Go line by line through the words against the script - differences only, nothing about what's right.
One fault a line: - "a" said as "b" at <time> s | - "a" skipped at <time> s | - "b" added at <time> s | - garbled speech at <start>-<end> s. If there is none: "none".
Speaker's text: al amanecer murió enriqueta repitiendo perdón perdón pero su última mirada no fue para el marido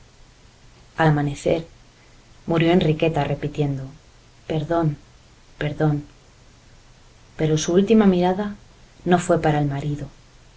none